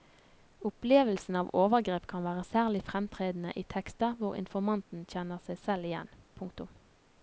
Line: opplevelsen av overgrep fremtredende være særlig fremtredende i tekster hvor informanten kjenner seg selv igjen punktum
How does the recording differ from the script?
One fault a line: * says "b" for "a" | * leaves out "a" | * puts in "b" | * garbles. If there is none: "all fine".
* says "kan" for "fremtredende"